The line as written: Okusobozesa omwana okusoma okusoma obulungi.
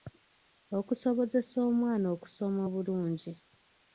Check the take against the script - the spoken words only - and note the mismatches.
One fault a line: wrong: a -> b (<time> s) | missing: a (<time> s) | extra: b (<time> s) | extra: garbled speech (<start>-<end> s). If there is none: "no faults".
missing: okusoma (2.6 s)